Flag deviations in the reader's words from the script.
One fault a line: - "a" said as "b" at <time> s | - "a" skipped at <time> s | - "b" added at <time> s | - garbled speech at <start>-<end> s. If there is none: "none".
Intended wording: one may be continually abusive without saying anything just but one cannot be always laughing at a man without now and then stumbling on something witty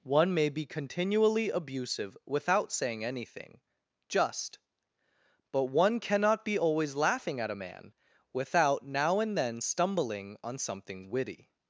none